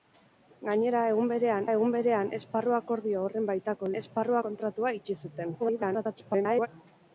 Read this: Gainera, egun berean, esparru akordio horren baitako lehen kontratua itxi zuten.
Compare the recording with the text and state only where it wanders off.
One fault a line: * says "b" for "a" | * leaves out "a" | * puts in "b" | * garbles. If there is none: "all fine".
* puts in "egun berean"
* says "esparru" for "lehen"
* garbles